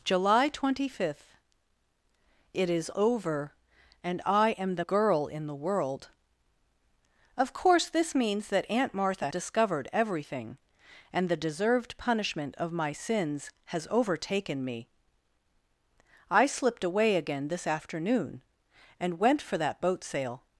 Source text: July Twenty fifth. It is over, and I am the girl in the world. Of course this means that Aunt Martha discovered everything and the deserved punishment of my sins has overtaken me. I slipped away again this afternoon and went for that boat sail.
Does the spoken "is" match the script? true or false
true